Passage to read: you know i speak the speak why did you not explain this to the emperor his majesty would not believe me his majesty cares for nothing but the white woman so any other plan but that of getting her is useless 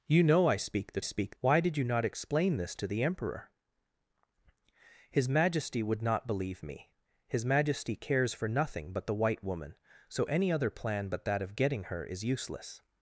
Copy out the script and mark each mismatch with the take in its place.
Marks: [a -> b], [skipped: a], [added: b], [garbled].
you know i speak the speak why did you not explain this to the emperor his majesty would not believe me his majesty cares for nothing but the white woman so any other plan but that of getting her is useless